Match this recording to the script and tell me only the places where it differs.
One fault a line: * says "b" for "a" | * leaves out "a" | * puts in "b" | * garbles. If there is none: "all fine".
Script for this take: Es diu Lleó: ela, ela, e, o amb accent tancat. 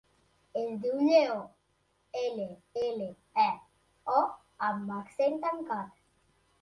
all fine